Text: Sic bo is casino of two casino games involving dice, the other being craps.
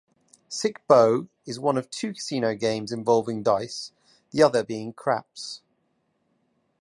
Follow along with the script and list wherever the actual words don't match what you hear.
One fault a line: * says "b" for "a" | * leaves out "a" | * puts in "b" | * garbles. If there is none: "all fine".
* says "one" for "casino"